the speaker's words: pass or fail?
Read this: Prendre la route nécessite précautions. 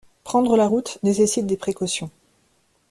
fail